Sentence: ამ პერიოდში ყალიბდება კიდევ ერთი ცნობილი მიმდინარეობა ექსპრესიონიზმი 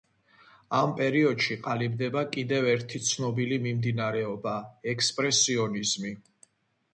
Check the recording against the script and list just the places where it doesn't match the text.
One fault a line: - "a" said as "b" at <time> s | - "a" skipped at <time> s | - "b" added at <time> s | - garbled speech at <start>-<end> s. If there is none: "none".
none